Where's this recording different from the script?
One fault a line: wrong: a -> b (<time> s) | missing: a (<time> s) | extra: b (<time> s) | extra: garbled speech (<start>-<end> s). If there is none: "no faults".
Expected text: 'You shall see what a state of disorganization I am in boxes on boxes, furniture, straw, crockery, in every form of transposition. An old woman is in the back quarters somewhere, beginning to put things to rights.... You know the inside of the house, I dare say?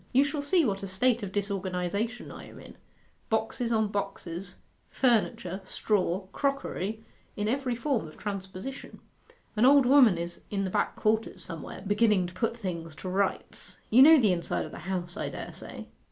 no faults